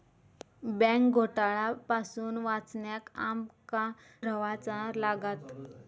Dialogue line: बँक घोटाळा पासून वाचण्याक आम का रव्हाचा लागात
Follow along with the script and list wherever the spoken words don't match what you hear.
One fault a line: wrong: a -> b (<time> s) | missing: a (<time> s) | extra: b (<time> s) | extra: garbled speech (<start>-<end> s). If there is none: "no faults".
no faults